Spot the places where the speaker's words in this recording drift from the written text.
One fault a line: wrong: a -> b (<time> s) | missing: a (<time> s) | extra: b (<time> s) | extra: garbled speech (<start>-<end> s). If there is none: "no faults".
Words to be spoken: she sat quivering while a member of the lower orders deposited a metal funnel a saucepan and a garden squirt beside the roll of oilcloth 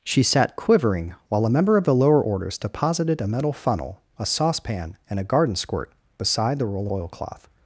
missing: of (6.9 s)